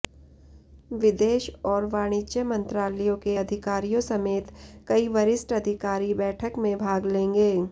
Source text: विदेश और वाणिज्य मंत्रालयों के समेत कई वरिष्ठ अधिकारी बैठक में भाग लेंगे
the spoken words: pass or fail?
fail